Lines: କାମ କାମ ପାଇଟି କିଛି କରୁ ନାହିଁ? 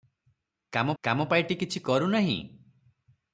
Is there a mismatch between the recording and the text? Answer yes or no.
no